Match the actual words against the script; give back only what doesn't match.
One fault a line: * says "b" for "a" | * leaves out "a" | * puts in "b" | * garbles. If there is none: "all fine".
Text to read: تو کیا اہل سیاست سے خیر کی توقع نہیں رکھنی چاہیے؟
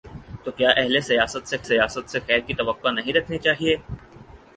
* puts in "سیاست سے"